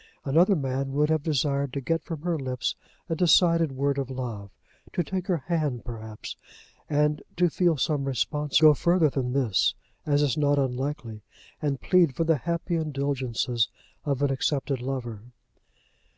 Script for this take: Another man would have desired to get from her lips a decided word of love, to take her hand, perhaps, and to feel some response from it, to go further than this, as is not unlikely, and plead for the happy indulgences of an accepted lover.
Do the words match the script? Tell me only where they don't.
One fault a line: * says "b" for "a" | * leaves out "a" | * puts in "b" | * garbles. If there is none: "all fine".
* leaves out "from it to"